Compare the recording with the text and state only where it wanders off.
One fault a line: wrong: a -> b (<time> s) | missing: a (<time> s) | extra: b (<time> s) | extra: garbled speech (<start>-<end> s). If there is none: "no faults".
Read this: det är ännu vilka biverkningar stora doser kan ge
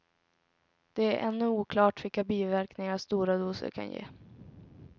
extra: oklart (1.5 s)